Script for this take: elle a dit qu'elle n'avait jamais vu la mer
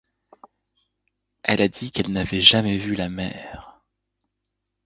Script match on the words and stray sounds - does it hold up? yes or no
yes